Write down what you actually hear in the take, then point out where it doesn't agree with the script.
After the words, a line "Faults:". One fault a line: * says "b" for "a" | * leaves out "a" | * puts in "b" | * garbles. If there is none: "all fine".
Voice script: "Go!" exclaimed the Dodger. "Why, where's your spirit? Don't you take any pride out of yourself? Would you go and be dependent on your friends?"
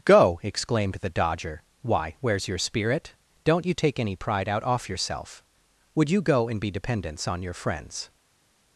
"Go!" exclaimed the Dodger. "Why, where's your spirit? Don't you take any pride out off yourself? Would you go and be dependents on your friends?"
Faults:
* says "off" for "of"
* says "dependents" for "dependent"